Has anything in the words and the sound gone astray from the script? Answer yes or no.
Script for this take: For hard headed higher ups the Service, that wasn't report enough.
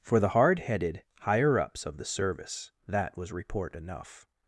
yes